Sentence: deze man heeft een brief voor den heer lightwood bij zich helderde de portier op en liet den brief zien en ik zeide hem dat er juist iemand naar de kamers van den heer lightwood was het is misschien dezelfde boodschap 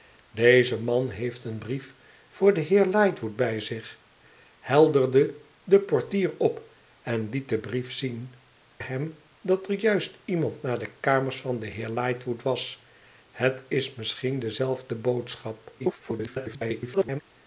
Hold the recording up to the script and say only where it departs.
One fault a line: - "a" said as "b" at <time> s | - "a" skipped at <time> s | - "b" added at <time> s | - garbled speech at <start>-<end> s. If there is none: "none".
- "en ik zeide" skipped at 8.3 s
- garbled speech at 15.8-17.2 s